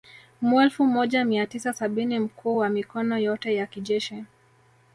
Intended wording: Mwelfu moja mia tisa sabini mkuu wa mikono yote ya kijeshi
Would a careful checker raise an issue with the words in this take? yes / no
no